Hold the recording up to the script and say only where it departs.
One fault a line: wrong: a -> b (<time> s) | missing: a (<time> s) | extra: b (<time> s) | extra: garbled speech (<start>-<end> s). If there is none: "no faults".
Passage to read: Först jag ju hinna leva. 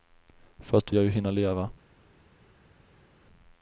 no faults